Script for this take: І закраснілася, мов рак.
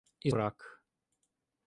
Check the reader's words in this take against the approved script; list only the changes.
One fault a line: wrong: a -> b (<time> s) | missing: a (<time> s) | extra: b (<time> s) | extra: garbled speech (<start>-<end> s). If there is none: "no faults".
missing: закраснілася мов (0.3 s)